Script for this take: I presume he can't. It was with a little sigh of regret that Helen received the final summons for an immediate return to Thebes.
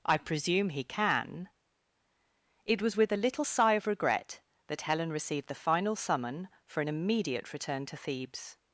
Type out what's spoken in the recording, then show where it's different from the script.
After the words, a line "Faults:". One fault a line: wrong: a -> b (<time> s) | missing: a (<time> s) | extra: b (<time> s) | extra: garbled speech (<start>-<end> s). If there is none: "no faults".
I presume he can. It was with a little sigh of regret that Helen received the final summon for an immediate return to Thebes.
Faults:
wrong: can't -> can (0.8 s)
wrong: summons -> summon (6.0 s)